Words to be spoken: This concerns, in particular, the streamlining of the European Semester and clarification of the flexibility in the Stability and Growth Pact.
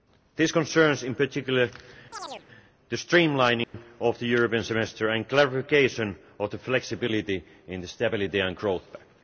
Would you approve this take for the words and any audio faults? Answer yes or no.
no